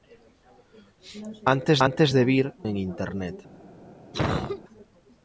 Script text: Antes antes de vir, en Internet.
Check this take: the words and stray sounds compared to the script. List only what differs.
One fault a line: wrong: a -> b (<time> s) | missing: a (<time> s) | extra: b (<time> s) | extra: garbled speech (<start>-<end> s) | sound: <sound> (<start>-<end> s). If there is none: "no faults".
sound: cough (4.1-4.6 s)